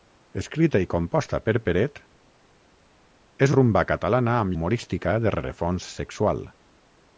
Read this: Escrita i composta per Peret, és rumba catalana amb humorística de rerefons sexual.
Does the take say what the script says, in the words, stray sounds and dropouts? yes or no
yes